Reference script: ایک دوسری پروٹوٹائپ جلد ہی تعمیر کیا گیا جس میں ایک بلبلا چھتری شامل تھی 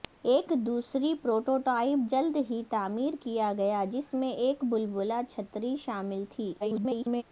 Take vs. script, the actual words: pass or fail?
fail